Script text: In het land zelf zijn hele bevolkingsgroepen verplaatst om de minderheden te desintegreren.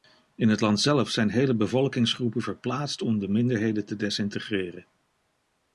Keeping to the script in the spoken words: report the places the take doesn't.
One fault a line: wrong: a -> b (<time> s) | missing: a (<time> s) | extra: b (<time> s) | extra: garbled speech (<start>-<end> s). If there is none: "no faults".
no faults